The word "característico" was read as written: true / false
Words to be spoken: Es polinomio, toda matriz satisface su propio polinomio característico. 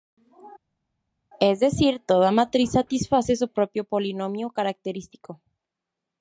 true